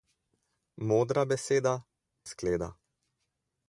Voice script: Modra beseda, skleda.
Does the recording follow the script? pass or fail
pass